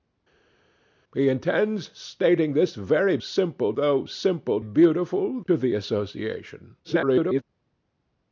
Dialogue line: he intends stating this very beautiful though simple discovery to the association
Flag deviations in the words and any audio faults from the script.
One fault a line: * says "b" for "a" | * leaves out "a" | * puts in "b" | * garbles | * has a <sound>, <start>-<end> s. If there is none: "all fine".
* says "simple" for "beautiful"
* says "beautiful" for "discovery"
* garbles